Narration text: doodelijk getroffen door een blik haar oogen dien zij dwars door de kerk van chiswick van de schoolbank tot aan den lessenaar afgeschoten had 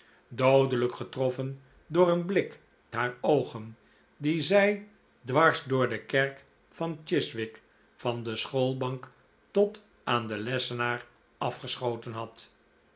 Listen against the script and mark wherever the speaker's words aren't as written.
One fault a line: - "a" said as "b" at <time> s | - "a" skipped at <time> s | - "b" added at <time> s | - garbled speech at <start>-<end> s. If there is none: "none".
none